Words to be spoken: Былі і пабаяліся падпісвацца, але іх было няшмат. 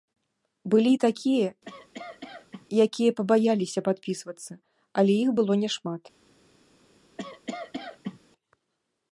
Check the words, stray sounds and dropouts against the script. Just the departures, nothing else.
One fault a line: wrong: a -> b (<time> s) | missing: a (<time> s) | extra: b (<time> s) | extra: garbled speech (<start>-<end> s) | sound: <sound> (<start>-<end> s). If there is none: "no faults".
extra: такія якія (1.1 s)
sound: cough (1.6-2.7 s)
sound: cough (7.2-8.2 s)